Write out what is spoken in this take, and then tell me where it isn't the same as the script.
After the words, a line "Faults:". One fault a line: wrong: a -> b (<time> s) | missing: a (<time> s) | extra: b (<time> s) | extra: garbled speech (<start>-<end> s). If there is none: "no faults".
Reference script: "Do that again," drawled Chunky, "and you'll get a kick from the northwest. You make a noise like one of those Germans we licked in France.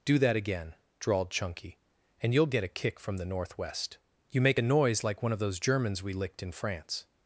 "Do that again," drawled Chunky, "and you'll get a kick from the northwest. You make a noise like one of those Germans we licked in France.
Faults:
no faults